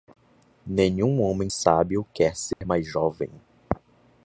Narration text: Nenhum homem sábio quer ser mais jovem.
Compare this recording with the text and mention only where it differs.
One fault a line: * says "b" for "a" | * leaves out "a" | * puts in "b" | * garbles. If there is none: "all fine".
all fine